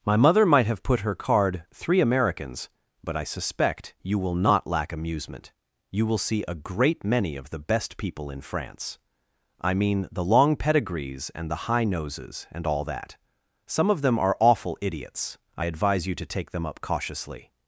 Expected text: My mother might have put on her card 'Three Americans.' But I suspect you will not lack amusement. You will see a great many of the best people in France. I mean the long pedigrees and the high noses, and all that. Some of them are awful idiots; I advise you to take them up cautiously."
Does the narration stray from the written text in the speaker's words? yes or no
yes